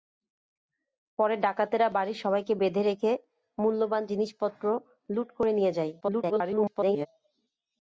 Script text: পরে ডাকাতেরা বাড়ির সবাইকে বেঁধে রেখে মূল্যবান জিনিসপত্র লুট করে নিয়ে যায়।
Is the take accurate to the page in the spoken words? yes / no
no